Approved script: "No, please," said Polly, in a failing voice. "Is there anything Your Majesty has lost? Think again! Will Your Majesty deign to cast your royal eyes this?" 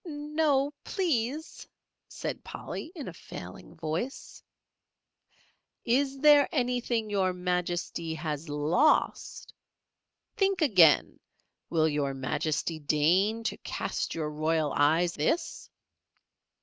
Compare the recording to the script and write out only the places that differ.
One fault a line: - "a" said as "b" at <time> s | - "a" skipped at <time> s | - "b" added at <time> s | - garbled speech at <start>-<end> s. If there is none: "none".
none